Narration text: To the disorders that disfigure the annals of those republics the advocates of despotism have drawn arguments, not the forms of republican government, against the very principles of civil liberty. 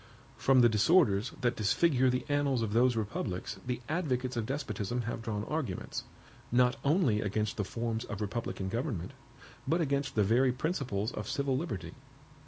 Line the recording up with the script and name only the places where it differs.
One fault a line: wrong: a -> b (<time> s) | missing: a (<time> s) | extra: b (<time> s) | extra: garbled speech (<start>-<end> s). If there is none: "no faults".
wrong: To -> From (0.3 s)
extra: only against (6.8 s)
extra: but (9.7 s)